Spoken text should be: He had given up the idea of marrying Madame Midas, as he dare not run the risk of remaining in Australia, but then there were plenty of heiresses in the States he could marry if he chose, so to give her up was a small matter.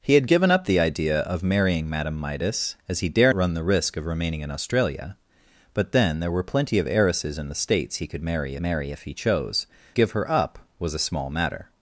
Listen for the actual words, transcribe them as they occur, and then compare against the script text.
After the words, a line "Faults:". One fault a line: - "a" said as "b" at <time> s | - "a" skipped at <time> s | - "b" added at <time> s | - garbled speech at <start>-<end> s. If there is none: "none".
He had given up the idea of marrying Madame Midas, as he dare run the risk of remaining in Australia, but then there were plenty of heiresses in the States he could marry marry if he chose, give her up was a small matter.
Faults:
- "not" skipped at 3.3 s
- "marry" added at 8.6 s
- "so to" skipped at 9.7 s